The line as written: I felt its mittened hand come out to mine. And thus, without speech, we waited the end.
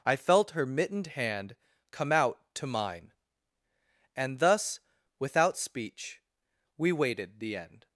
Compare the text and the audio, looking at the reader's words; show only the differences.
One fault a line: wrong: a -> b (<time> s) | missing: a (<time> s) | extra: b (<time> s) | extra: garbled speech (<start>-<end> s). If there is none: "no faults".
wrong: its -> her (0.5 s)